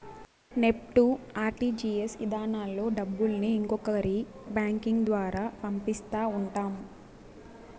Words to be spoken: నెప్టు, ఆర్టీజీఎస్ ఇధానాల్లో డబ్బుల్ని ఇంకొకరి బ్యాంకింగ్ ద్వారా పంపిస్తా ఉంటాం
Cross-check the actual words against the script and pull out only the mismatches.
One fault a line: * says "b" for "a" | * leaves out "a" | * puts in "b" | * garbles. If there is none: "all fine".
all fine